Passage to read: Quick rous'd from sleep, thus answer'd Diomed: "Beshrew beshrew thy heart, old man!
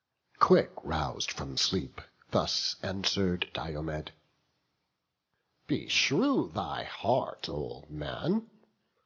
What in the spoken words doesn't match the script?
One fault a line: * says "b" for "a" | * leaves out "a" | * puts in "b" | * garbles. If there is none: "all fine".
* leaves out "beshrew"